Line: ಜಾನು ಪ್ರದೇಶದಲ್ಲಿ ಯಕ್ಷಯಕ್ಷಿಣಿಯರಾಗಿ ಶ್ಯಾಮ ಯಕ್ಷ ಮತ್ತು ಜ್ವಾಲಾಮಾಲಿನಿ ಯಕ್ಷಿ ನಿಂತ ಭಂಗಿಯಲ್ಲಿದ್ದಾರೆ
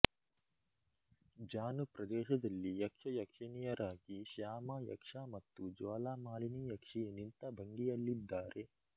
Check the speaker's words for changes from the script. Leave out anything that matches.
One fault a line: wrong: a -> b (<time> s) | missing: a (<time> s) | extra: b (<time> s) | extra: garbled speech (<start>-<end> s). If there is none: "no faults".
no faults